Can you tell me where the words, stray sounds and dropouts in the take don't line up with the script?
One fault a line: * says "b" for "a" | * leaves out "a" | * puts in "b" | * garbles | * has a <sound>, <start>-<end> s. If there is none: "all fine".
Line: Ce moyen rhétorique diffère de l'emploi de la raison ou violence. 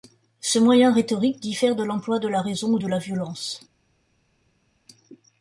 * puts in "de la"